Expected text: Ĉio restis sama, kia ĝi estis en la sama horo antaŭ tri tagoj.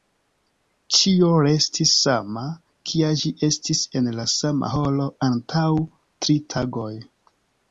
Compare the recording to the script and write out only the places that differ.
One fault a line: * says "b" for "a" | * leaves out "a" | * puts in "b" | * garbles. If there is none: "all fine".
all fine